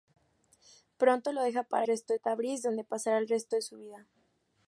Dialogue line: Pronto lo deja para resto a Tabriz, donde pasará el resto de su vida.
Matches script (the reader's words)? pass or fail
pass